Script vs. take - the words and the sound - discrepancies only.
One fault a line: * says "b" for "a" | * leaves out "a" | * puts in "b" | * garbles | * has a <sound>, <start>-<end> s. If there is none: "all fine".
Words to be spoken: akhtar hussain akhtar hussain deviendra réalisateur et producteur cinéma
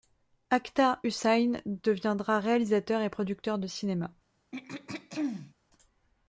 * leaves out "akhtar hussain"
* puts in "de"
* has a throat clearing, 4.5-5.5 s